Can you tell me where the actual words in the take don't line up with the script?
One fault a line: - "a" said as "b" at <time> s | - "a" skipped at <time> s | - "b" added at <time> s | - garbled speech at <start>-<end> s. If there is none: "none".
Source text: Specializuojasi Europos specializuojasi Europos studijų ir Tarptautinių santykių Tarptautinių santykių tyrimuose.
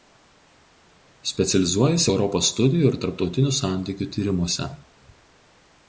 - "specializuojasi Europos" skipped at 2.5 s
- "Tarptautinių santykių" skipped at 4.1 s